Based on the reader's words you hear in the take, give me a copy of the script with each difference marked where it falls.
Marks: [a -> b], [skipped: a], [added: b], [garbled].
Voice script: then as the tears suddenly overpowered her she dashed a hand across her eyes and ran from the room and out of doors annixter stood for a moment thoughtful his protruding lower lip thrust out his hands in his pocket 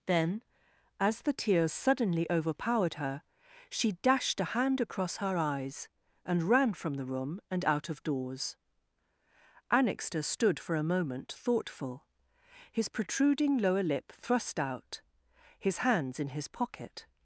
then as the tears suddenly overpowered her she dashed a hand across her eyes and ran from the room and out of doors annixter stood for a moment thoughtful his protruding lower lip thrust out his hands in his pocket